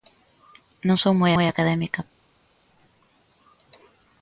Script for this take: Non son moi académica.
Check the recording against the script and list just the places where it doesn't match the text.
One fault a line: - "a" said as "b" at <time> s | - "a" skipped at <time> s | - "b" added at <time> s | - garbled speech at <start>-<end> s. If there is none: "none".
- "moi" added at 1.3 s